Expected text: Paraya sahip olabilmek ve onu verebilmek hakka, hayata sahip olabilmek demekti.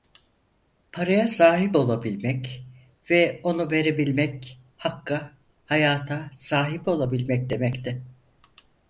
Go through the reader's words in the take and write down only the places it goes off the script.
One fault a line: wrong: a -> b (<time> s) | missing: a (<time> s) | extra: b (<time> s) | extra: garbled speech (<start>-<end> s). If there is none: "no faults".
no faults